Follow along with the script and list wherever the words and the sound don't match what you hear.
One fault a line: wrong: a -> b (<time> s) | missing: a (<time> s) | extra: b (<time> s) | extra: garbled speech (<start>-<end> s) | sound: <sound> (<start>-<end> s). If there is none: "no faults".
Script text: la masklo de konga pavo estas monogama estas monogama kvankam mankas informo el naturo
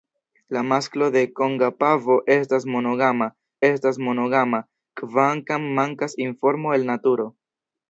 no faults